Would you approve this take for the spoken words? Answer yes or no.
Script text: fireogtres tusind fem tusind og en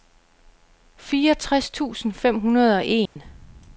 no